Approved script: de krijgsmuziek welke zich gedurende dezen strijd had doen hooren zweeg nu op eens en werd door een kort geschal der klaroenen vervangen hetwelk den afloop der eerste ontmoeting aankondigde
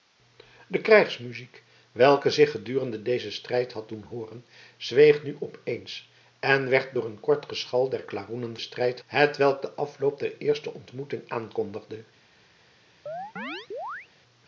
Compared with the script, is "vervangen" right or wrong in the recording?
wrong